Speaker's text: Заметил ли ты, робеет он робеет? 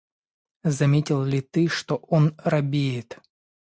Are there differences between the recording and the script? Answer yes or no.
yes